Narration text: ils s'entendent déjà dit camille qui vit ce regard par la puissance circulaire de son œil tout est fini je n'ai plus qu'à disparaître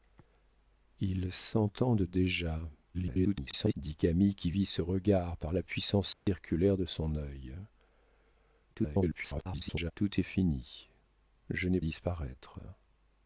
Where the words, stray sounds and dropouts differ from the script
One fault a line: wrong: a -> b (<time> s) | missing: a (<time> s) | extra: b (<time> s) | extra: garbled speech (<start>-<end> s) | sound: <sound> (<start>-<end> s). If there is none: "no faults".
extra: garbled speech (2.9-3.7 s)
sound: dropout (6.1-6.3 s)
extra: garbled speech (8.7-9.9 s)
missing: plus qu'à (11.8 s)